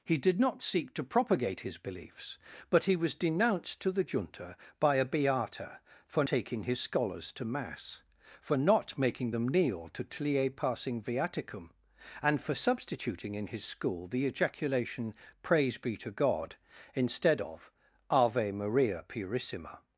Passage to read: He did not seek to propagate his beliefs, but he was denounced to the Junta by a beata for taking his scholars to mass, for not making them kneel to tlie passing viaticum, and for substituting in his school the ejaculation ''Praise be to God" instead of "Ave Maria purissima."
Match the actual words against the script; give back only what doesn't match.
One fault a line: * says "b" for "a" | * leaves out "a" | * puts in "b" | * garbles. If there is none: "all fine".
all fine